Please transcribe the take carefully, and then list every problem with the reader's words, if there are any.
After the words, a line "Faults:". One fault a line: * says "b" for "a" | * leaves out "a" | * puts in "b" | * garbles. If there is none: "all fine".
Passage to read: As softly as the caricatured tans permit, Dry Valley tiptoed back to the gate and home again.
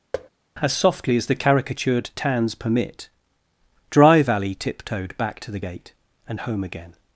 As softly as the caricatured tans permit, Dry Valley tiptoed back to the gate and home again.
Faults:
all fine